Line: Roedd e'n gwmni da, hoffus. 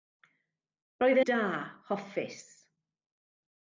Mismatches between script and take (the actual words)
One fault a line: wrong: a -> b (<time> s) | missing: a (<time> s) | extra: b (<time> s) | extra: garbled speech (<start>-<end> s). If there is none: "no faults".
missing: e'n gwmni (1.2 s)